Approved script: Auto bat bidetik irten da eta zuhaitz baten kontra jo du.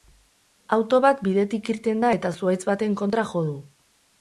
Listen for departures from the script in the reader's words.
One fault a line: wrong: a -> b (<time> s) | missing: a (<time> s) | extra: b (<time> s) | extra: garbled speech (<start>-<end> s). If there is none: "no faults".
no faults